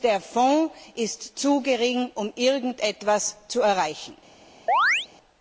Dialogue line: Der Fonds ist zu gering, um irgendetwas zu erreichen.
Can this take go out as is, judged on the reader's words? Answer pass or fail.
pass